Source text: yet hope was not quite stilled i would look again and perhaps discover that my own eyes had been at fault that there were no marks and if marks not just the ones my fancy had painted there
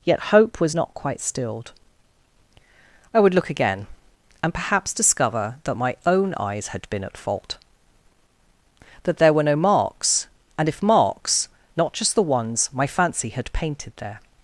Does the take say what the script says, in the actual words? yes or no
yes